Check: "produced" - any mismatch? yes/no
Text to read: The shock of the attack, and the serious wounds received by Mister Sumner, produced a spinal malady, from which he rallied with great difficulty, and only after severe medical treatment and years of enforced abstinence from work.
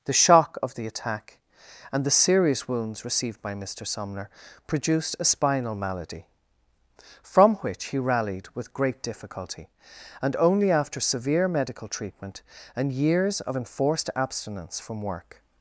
no